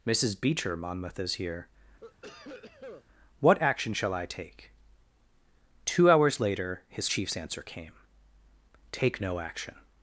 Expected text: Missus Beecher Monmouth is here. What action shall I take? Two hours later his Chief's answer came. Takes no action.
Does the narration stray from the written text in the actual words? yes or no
yes